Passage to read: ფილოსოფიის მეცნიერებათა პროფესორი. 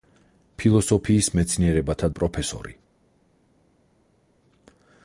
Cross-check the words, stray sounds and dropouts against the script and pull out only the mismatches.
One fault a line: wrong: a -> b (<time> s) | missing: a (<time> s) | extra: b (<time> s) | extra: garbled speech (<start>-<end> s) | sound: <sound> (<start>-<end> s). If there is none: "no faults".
no faults